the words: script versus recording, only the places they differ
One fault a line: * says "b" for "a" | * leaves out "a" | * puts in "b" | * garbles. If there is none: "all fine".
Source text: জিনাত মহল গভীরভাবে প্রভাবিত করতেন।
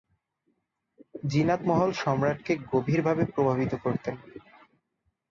* puts in "সম্রাটকে"